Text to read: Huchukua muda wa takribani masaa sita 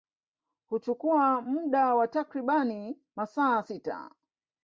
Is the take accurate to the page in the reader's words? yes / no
yes